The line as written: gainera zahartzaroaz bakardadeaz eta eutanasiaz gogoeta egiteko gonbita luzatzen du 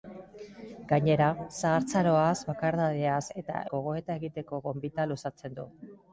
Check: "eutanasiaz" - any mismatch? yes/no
yes